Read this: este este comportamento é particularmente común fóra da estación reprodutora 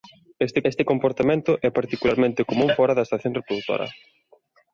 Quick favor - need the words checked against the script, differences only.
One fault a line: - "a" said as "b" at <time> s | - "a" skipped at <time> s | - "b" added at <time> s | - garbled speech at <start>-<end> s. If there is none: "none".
none